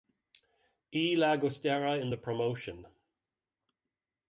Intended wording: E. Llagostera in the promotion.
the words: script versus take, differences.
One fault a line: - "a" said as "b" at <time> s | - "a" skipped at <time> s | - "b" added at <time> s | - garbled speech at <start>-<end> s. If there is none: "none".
none